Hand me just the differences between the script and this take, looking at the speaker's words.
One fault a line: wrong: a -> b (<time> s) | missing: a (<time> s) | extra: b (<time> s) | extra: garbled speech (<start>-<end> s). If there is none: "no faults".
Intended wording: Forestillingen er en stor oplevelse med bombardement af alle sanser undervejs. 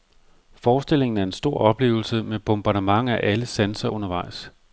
no faults